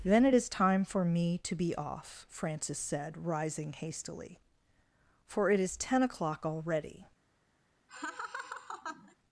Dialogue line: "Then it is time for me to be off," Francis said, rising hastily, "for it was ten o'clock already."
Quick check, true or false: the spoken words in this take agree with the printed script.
false